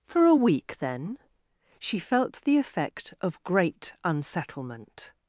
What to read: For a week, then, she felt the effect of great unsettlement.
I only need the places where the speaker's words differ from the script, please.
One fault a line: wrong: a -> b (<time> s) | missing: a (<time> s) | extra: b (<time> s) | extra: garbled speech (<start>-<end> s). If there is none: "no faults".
no faults